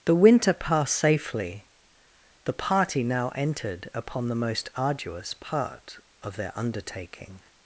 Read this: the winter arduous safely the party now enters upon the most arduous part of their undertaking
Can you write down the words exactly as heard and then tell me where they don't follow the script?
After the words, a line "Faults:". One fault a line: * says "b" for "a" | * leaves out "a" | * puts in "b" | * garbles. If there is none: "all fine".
the winter passed safely the party now entered upon the most arduous part of their undertaking
Faults:
* says "passed" for "arduous"
* says "entered" for "enters"